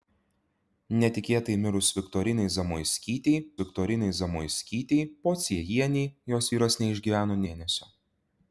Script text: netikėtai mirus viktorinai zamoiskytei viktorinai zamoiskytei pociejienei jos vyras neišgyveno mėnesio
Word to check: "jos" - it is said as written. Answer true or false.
true